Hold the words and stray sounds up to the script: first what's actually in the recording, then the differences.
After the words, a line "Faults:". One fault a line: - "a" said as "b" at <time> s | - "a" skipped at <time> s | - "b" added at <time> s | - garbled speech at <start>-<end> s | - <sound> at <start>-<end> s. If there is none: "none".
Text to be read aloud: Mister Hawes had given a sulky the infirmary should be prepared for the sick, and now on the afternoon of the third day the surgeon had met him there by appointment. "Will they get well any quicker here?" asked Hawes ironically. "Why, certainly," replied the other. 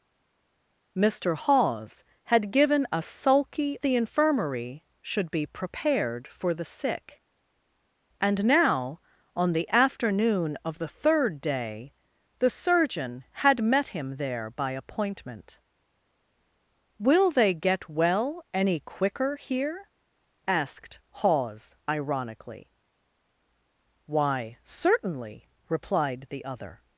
Mister Hawes had given a sulky the infirmary should be prepared for the sick, and now on the afternoon of the third day the surgeon had met him there by appointment. "Will they get well any quicker here?" asked Hawes ironically. "Why, certainly," replied the other.
Faults:
none